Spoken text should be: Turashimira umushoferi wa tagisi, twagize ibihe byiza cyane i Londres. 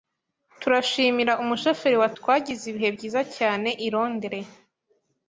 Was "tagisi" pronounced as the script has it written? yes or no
no